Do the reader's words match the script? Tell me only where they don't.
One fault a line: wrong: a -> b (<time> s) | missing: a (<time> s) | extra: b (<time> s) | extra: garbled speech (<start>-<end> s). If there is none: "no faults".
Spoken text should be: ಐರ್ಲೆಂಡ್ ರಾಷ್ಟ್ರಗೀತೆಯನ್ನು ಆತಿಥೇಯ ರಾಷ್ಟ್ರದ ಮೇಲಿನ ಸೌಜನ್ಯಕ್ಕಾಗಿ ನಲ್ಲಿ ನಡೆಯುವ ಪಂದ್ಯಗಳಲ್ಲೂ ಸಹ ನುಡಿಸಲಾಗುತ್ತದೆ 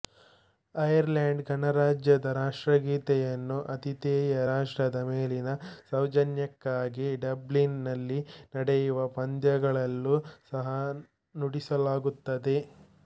extra: ಗಣರಾಜ್ಯದ (1.5 s)
extra: ಡಬ್ಲಿನ್ (7.3 s)